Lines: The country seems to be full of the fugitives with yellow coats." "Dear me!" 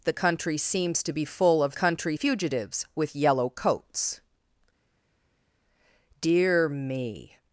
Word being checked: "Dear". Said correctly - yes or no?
yes